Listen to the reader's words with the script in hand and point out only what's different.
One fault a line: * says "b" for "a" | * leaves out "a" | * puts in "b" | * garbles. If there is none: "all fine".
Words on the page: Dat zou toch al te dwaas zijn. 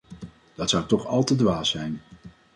all fine